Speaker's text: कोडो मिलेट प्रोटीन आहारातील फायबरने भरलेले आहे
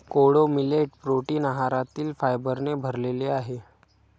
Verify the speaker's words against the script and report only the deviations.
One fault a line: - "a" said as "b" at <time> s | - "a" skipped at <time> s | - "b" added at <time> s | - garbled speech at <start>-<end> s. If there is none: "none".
none